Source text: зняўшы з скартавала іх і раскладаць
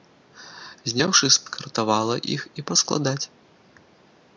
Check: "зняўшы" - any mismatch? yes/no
no